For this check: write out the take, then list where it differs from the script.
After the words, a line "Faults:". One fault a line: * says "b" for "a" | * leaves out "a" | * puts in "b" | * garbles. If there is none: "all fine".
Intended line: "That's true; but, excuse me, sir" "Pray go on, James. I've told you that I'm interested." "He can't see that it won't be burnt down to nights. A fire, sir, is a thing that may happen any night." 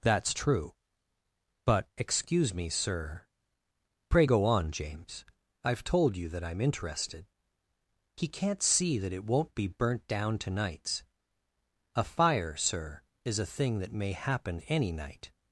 "That's true; but, excuse me, sir" "Pray go on, James. I've told you that I'm interested." "He can't see that it won't be burnt down to nights. A fire, sir, is a thing that may happen any night."
Faults:
all fine